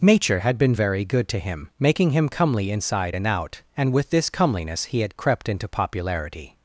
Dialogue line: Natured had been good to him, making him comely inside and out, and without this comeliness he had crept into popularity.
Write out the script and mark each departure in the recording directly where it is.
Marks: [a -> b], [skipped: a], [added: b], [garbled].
[Natured -> Nature] had been [added: very] good to him, making him comely inside and out, and [without -> with] this comeliness he had crept into popularity.